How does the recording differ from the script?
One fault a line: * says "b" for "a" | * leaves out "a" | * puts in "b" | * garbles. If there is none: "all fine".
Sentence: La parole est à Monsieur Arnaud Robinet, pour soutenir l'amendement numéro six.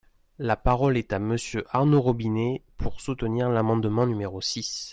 all fine